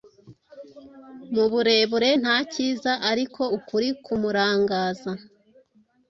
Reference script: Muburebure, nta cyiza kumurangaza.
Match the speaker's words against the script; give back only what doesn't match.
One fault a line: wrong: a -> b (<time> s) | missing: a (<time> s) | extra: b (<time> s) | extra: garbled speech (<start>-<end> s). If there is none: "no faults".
extra: ariko ukuri (3.1 s)